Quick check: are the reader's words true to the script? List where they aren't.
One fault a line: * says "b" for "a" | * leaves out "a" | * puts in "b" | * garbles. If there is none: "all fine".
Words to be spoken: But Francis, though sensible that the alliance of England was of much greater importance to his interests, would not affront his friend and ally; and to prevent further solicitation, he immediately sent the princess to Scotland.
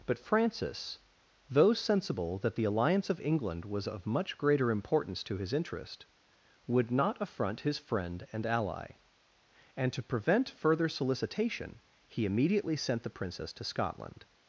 * says "interest" for "interests"